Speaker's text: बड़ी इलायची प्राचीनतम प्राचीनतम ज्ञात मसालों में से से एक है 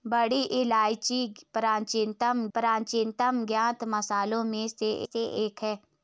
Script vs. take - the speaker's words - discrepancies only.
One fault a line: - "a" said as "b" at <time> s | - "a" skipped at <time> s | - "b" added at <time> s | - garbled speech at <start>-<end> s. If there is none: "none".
none